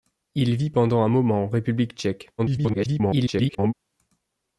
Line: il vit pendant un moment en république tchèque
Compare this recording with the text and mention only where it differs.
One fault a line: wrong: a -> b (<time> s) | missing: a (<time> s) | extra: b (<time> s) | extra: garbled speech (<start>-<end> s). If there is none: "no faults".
extra: garbled speech (2.4-3.7 s)